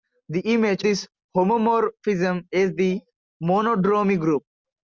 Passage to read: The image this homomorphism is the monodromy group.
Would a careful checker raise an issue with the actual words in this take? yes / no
no